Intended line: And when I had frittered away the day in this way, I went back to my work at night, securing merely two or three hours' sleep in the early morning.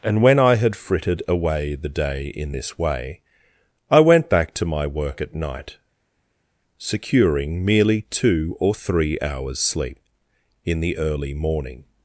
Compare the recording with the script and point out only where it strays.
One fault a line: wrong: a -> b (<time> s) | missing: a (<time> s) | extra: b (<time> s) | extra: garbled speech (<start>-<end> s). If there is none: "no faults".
no faults